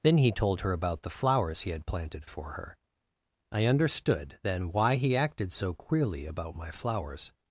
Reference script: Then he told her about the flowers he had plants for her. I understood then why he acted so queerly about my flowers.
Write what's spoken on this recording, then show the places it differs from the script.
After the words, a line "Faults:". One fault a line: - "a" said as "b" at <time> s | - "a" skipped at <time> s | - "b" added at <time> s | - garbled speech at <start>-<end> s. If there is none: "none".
Then he told her about the flowers he had planted for her. I understood then why he acted so queerly about my flowers.
Faults:
- "plants" said as "planted" at 1.9 s